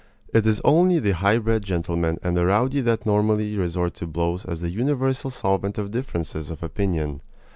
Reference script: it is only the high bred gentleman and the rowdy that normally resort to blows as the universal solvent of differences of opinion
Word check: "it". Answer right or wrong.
right